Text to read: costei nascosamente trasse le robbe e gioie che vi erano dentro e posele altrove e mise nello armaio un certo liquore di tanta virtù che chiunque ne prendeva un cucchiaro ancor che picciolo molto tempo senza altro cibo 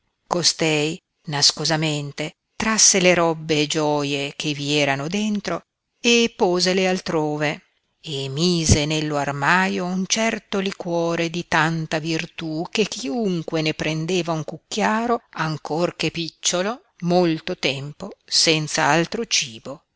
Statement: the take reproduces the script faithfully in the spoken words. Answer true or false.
true